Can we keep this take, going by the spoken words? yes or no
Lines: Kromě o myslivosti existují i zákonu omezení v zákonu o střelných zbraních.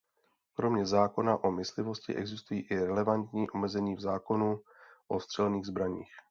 no